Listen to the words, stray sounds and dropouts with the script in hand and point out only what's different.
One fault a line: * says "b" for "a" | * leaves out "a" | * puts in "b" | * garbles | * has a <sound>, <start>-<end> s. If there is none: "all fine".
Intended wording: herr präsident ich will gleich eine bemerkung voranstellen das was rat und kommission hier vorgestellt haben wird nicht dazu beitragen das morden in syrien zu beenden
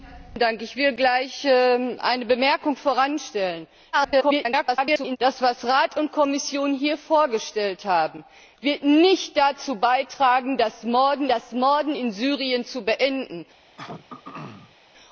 * garbles
* puts in "das morden"
* has a throat clearing, 13.8-14.8 s